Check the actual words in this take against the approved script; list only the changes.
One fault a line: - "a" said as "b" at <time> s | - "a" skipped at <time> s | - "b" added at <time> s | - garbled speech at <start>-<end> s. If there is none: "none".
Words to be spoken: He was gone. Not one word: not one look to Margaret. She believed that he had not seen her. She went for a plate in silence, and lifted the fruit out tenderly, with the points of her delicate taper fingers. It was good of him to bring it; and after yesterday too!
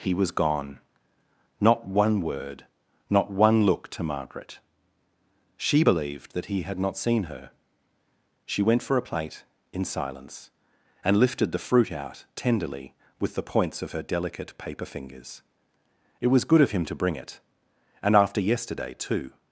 - "taper" said as "paper" at 14.6 s